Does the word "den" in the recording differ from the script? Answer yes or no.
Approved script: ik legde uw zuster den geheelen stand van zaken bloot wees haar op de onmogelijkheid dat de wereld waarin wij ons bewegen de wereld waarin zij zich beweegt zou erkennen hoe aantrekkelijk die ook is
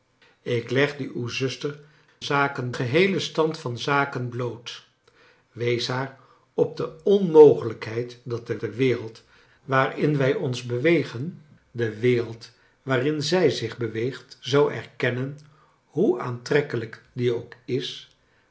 yes